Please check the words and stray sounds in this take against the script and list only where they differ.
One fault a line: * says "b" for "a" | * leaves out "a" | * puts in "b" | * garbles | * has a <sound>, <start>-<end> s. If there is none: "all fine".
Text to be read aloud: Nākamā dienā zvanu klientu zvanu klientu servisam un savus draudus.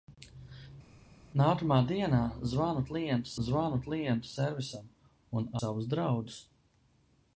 all fine